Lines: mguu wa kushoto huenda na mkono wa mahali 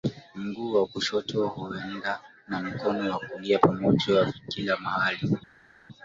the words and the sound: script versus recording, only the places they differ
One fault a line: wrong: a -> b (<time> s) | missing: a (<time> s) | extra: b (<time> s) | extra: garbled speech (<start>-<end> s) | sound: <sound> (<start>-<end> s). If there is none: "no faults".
extra: kulia pamoja kila (3.2 s)